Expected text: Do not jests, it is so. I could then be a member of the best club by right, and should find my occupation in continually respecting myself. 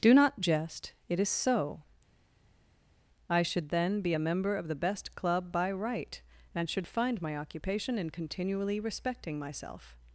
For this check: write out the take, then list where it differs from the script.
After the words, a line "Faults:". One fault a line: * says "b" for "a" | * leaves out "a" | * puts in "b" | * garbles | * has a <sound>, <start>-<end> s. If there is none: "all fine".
Do not jest, it is so. I should then be a member of the best club by right, and should find my occupation in continually respecting myself.
Faults:
* says "jest" for "jests"
* says "should" for "could"